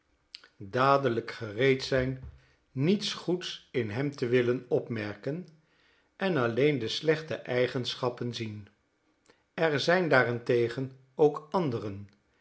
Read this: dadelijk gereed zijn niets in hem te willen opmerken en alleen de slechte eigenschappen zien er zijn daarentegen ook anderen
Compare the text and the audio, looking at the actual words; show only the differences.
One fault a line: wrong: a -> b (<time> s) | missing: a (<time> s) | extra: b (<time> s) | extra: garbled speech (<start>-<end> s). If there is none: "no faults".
extra: goeds (3.1 s)